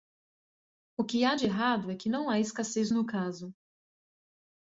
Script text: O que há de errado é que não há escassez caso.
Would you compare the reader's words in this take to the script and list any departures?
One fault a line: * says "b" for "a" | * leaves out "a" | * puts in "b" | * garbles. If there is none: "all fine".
* puts in "no"